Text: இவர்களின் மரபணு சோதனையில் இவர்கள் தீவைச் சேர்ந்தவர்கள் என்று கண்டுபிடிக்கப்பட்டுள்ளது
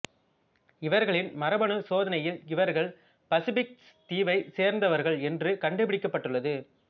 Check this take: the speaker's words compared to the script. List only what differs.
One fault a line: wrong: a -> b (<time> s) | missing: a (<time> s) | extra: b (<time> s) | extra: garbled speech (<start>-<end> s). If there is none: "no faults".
extra: பசிபிக் (3.3 s)